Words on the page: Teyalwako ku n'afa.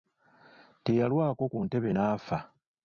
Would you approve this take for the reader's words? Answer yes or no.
no